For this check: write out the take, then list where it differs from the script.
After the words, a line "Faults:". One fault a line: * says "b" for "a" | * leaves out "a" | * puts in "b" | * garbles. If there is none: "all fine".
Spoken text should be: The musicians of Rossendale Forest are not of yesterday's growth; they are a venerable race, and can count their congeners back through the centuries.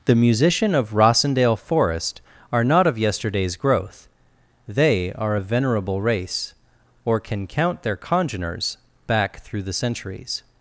The musician of Rossendale Forest are not of yesterday's growth; they are a venerable race, or can count their congeners back through the centuries.
Faults:
* says "musician" for "musicians"
* says "or" for "and"